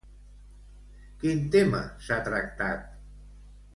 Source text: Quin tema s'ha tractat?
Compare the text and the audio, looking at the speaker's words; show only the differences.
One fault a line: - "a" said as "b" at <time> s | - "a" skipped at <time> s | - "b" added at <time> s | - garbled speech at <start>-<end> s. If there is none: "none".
none